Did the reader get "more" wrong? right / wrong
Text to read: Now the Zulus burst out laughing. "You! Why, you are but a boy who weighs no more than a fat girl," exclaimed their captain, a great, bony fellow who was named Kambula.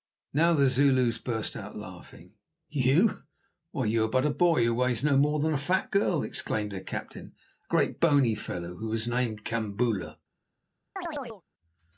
right